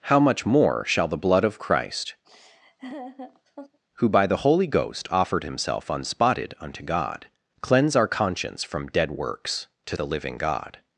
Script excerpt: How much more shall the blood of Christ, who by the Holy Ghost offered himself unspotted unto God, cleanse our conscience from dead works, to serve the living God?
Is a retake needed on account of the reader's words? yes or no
yes